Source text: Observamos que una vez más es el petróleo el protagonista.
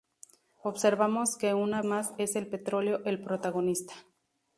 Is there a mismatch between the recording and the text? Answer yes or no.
yes